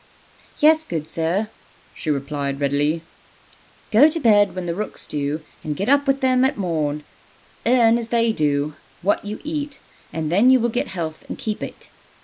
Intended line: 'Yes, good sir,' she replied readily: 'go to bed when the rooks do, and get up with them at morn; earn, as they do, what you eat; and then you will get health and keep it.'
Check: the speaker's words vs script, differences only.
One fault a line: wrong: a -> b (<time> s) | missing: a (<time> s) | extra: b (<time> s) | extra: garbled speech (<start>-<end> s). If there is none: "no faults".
no faults